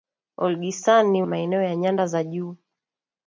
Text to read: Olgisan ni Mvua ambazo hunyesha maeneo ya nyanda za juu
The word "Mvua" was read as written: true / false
false